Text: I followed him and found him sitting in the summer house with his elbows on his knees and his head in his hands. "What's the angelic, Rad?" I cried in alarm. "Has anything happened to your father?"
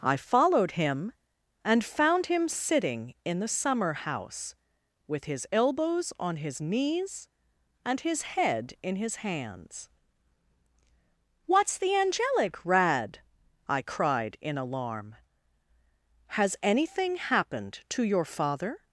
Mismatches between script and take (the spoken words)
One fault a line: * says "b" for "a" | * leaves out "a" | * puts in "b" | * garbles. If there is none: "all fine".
all fine